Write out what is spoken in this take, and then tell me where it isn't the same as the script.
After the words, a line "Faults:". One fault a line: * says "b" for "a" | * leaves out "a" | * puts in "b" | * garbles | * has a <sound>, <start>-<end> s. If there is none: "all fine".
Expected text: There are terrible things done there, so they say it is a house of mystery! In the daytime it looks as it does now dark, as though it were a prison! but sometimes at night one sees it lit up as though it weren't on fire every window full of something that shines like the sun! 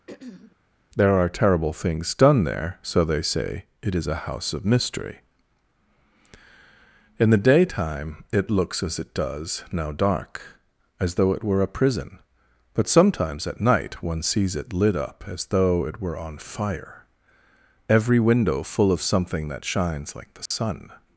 There are terrible things done there, so they say it is a house of mystery! In the daytime it looks as it does now dark, as though it were a prison! but sometimes at night one sees it lit up as though it were on fire every window full of something that shines like the sun!
Faults:
* has a throat clearing, 0.1-0.6 s
* says "were" for "weren't"
* has a dropout, 20.5-20.5 s